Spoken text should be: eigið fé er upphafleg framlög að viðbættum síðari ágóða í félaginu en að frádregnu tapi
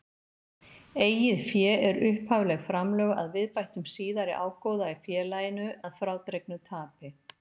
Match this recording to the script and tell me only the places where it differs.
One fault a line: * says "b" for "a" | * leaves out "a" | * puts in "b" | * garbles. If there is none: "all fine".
* leaves out "en"